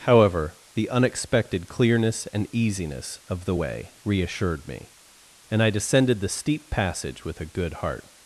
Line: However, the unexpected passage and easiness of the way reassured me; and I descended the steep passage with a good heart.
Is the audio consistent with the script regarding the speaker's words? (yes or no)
no